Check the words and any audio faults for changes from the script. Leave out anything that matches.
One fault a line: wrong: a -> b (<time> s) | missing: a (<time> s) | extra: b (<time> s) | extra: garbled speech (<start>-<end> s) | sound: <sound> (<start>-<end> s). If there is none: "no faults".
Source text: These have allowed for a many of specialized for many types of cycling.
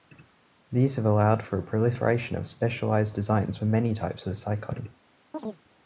wrong: many -> proliferation (1.6 s)
extra: designs (3.1 s)
sound: chirp (5.3-5.6 s)